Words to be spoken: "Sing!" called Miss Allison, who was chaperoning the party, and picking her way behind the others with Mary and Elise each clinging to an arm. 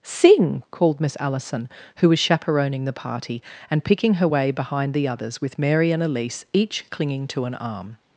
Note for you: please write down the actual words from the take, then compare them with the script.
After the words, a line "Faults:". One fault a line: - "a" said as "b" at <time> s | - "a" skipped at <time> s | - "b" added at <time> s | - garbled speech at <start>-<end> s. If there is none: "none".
"Sing!" called Miss Allison, who was chaperoning the party, and picking her way behind the others with Mary and Elise each clinging to an arm.
Faults:
none